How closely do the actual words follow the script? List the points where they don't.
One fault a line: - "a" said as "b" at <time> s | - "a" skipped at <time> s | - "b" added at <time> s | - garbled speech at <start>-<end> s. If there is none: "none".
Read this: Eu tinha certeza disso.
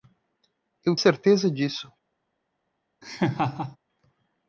- "tinha" skipped at 0.9 s